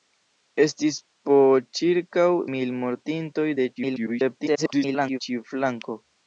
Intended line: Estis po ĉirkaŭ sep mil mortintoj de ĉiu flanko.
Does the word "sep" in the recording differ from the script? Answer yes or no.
yes